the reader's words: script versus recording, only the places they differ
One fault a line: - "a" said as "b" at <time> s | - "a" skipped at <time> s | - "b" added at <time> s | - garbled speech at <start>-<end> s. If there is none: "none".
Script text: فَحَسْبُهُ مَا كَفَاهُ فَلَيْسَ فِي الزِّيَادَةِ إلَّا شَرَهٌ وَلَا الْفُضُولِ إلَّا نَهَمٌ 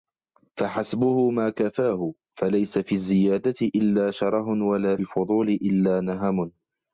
none